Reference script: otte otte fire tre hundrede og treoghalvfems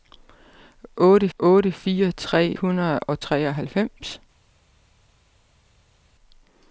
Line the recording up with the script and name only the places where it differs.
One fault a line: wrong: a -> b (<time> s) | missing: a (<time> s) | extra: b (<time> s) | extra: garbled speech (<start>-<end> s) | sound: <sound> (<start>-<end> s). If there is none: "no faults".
no faults